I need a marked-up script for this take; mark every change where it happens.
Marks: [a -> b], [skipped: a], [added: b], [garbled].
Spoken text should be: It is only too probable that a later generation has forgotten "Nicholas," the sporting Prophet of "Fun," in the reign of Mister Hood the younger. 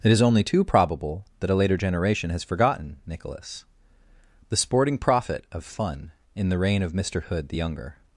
It is only too probable that a later generation has forgotten "Nicholas," the sporting Prophet of "Fun," in the reign of Mister Hood the younger.